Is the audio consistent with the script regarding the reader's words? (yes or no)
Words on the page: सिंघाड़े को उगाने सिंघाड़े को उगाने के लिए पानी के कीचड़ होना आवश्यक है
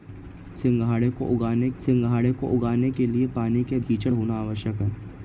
yes